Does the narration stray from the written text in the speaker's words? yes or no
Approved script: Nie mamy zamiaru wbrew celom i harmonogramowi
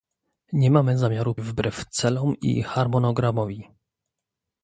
no